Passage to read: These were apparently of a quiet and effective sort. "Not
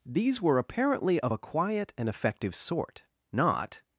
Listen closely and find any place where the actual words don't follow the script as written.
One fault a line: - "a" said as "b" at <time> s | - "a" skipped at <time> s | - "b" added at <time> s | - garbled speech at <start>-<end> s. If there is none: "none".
none